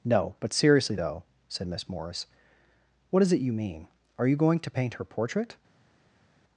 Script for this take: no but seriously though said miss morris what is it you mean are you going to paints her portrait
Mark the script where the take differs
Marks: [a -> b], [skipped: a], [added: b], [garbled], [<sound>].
no but seriously though said miss morris what is it you mean are you going to [paints -> paint] her portrait